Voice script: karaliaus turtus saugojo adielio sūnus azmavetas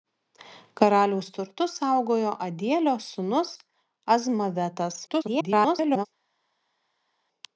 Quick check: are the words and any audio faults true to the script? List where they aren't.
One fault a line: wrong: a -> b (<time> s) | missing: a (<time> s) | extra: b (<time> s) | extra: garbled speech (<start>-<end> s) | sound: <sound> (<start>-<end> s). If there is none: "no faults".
extra: garbled speech (5.1-6.1 s)